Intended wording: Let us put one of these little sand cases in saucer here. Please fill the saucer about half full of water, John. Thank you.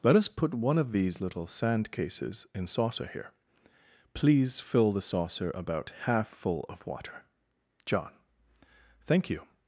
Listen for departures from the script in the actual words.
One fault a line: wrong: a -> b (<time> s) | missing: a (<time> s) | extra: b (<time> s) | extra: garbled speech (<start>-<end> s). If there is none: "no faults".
no faults